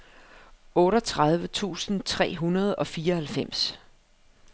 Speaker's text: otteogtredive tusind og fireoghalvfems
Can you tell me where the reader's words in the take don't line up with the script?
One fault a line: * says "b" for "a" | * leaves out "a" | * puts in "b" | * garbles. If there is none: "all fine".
* puts in "tre hundrede"